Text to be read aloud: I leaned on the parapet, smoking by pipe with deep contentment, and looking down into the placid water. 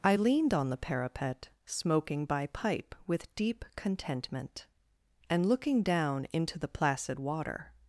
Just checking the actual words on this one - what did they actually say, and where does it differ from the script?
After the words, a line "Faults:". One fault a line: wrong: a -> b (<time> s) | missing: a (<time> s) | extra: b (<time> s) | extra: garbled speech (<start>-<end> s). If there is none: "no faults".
I leaned on the parapet, smoking by pipe with deep contentment, and looking down into the placid water.
Faults:
no faults